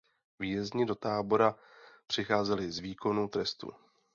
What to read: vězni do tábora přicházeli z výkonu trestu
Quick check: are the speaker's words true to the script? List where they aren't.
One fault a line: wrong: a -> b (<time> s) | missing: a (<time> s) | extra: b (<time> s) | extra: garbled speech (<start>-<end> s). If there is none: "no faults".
no faults